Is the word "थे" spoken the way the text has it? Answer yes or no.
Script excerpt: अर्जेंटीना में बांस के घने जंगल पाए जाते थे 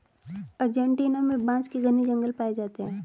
no